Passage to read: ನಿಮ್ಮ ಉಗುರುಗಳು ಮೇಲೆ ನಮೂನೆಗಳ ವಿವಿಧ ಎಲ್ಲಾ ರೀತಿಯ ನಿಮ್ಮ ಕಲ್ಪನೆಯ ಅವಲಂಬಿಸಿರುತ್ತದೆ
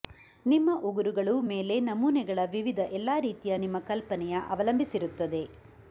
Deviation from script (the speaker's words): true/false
false